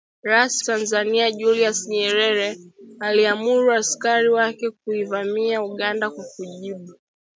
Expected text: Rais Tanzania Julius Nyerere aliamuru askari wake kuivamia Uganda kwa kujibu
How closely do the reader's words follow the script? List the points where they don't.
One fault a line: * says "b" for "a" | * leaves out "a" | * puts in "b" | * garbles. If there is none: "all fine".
all fine